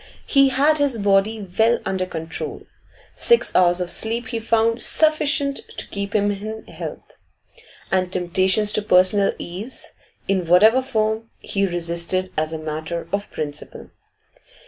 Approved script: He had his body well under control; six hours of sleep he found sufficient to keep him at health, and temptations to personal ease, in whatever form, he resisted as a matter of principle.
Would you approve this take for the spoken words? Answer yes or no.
no